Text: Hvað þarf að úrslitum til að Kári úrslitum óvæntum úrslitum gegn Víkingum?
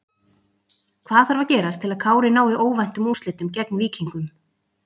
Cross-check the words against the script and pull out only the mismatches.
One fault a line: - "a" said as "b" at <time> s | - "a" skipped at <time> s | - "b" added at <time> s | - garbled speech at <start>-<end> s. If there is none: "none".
- "úrslitum" said as "gerast" at 1.5 s
- "úrslitum" said as "nái" at 2.4 s